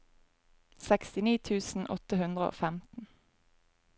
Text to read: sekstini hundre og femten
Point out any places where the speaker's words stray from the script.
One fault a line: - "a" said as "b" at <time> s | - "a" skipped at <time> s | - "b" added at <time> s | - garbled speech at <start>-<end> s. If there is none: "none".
- "tusen åtte" added at 1.5 s